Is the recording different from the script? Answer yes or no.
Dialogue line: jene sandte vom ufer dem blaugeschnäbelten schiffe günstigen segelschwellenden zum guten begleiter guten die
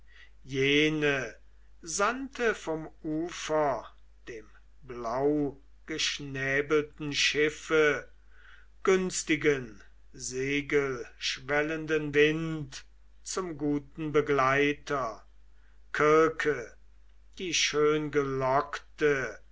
yes